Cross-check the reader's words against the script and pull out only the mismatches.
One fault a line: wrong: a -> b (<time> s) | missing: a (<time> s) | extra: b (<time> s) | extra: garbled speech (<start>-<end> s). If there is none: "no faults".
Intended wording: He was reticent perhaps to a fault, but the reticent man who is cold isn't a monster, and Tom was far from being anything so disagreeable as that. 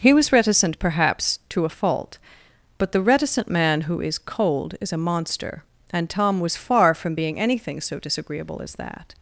wrong: isn't -> is (4.8 s)